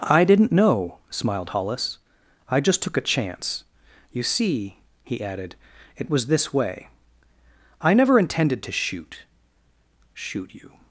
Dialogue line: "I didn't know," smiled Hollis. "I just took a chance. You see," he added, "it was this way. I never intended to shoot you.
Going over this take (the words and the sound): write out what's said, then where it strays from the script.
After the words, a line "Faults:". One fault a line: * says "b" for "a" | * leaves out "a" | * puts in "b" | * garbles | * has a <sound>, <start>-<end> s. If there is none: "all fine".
"I didn't know," smiled Hollis. "I just took a chance. You see," he added, "it was this way. I never intended to shoot shoot you.
Faults:
* puts in "shoot"